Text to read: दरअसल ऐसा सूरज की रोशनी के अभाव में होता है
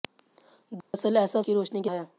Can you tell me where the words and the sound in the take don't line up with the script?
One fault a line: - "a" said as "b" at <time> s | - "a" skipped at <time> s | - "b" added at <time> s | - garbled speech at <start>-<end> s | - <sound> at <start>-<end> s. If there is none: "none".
- dropout at 0.8-0.9 s
- "सूरज" skipped at 1.4 s
- "अभाव में होता" skipped at 1.9 s